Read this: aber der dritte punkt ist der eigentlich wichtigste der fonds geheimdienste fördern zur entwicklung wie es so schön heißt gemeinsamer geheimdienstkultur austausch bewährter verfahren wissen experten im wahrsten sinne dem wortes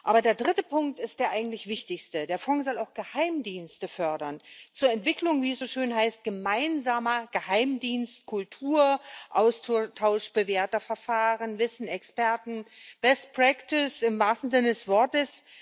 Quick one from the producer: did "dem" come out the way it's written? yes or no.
no